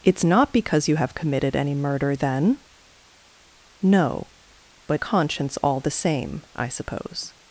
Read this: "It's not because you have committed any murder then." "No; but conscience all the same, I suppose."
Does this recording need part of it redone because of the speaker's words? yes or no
no